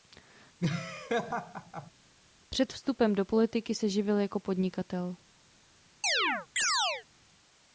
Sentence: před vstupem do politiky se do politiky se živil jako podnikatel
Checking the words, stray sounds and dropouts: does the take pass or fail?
fail